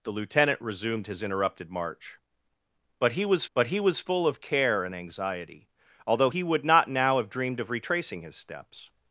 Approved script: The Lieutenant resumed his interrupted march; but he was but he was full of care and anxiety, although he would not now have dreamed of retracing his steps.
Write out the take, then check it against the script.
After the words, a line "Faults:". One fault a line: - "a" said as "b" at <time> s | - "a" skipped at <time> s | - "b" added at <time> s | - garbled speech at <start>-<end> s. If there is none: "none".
The Lieutenant resumed his interrupted march; but he was but he was full of care and anxiety, although he would not now have dreamed of retracing his steps.
Faults:
none